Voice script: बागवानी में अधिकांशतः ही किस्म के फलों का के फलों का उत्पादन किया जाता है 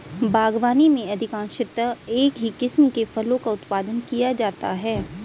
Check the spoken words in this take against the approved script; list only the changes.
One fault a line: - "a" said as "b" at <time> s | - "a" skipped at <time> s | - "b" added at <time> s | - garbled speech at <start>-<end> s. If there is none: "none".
- "एक" added at 2.1 s
- "के फलों का" skipped at 3.5 s